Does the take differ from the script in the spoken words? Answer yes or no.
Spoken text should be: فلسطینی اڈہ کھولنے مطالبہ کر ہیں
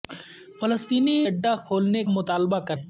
no